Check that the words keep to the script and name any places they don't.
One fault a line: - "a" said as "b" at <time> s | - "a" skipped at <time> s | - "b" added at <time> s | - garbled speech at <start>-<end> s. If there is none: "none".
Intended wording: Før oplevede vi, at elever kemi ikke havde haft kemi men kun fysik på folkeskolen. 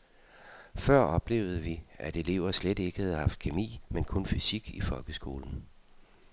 - "kemi" said as "slet" at 2.5 s
- "på" said as "i" at 4.7 s